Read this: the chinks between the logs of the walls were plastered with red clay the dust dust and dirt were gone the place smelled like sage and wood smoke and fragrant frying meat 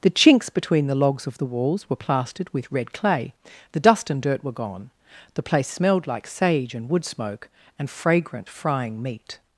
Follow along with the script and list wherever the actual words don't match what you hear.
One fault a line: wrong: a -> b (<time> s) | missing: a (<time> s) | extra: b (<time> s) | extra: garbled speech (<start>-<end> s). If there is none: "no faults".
missing: dust (4.1 s)